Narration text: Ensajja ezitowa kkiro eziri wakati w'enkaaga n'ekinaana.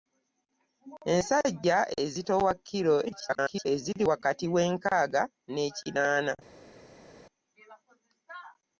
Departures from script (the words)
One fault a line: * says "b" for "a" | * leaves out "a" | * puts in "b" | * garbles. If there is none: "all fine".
* garbles